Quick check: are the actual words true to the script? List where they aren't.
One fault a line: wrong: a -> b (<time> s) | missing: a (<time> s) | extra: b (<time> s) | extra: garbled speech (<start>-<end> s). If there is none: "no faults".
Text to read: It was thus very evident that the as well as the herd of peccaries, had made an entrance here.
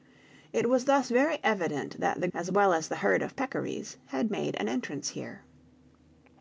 no faults